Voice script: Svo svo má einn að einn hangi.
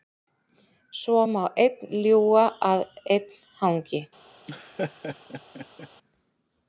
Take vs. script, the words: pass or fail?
fail